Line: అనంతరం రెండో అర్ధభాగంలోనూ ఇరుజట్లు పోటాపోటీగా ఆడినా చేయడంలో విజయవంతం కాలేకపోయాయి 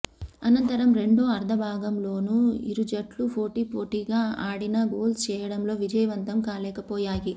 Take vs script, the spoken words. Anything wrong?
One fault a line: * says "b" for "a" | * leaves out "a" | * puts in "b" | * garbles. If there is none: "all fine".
* puts in "గోల్స్"